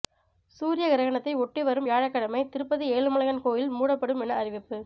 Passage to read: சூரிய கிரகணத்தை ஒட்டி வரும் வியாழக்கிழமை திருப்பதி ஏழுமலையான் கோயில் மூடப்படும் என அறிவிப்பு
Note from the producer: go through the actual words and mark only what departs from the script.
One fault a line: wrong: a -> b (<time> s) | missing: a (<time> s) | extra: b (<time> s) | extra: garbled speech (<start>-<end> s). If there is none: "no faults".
no faults